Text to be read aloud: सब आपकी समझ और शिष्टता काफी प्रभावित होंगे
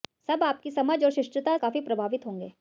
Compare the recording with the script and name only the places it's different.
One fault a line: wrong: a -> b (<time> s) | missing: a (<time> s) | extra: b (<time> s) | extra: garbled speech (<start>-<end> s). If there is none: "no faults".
no faults